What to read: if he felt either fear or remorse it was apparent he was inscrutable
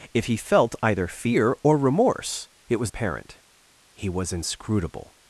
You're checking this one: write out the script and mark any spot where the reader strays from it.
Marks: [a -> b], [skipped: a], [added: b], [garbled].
if he felt either fear or remorse it was apparent he was inscrutable